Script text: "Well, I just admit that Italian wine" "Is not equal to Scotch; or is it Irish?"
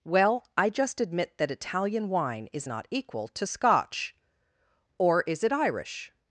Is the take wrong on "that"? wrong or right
right